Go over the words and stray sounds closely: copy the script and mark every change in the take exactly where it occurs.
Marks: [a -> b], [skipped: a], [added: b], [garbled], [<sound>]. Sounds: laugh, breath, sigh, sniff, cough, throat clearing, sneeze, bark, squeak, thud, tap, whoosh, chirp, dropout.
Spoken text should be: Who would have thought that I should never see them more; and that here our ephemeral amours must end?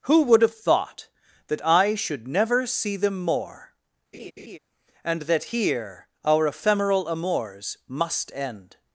Who would have thought that I should never see them more; [laugh] and that here our ephemeral amours must end?